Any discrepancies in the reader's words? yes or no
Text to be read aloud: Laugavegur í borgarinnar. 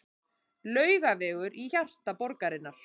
yes